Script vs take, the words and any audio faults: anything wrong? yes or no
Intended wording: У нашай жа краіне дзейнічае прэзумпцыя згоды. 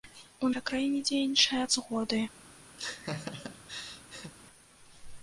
yes